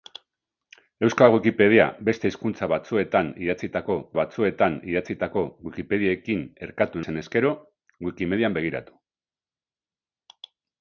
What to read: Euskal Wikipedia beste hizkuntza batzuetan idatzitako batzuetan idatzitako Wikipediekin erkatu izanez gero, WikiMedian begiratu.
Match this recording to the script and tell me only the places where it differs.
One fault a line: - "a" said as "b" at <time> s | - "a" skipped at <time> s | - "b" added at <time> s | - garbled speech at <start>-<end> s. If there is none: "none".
none